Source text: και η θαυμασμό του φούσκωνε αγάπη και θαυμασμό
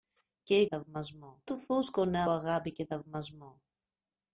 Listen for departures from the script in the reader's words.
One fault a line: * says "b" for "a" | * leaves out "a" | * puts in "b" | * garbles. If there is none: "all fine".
all fine